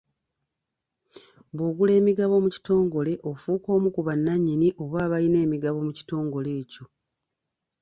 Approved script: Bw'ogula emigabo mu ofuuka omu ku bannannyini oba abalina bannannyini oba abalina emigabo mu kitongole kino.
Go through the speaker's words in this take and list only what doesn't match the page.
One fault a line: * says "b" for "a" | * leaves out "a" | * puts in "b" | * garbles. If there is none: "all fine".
* puts in "kitongole"
* leaves out "bannannyini oba abalina"
* says "ekyo" for "kino"